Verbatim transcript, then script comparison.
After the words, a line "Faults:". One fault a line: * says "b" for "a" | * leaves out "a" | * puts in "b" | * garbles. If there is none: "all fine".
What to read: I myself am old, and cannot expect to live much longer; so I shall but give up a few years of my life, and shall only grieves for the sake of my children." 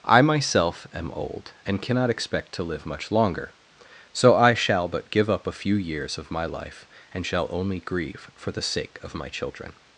I myself am old, and cannot expect to live much longer; so I shall but give up a few years of my life, and shall only grieve for the sake of my children."
Faults:
* says "grieve" for "grieves"